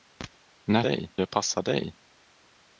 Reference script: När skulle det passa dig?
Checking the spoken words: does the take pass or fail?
fail